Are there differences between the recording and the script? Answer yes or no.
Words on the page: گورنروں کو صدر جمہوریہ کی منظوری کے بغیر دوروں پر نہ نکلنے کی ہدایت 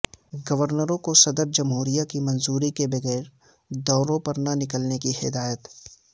no